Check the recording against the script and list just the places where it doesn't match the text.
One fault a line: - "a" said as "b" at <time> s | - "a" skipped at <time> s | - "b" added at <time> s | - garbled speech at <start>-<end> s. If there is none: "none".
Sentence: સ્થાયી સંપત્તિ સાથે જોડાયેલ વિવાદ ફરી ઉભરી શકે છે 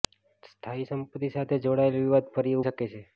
- "ઉભરી" skipped at 2.6 s